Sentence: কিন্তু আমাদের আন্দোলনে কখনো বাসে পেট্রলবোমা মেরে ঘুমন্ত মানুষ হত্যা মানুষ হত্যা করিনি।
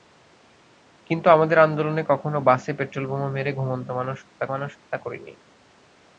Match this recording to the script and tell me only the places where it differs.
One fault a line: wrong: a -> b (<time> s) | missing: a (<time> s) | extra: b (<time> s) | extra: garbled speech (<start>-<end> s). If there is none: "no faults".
no faults